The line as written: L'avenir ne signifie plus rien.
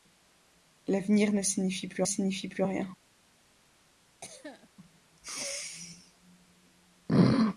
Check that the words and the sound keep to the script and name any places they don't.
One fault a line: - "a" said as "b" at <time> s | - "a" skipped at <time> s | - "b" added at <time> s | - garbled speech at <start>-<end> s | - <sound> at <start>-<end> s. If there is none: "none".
- "signifie plus" added at 2.0 s
- cough at 4.2-4.7 s